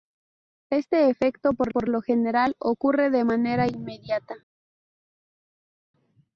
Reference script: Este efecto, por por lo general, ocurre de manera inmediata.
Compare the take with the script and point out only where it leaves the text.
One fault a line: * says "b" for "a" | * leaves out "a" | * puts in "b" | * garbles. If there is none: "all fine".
all fine